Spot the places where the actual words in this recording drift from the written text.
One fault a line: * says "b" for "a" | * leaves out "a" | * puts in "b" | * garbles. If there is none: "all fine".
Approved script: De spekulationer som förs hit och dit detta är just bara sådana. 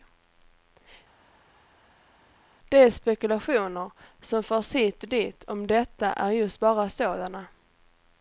* puts in "om"